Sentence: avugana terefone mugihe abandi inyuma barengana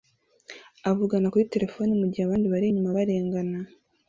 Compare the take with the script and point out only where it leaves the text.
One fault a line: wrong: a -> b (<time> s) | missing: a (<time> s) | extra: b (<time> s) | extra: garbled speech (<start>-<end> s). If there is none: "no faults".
extra: kuri (1.3 s)
extra: bari (2.5 s)